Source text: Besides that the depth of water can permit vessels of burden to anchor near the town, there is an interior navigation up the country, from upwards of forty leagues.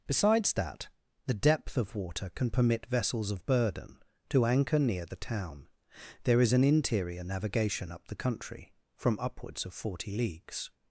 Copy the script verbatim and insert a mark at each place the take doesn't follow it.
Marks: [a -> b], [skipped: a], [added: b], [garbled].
Besides that the depth of water can permit vessels of burden to anchor near the town, there is an interior navigation up the country, from upwards of forty leagues.